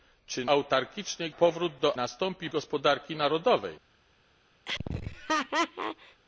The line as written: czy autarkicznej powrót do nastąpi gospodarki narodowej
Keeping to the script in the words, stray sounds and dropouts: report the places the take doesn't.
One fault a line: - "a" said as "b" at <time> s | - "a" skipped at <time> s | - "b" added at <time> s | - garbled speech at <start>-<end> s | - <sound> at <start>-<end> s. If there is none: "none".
- laugh at 4.7-6.2 s